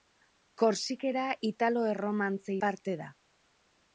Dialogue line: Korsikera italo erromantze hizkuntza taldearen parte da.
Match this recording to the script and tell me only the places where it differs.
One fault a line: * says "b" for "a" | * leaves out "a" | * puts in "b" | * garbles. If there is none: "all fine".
* leaves out "hizkuntza taldearen"